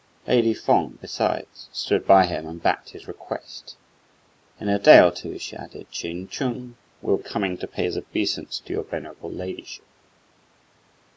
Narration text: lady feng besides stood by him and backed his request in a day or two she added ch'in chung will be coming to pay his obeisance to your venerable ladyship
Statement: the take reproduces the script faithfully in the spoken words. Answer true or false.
false